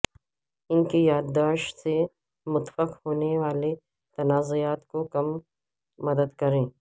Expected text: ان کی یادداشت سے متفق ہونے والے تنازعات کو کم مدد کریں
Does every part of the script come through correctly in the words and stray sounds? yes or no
yes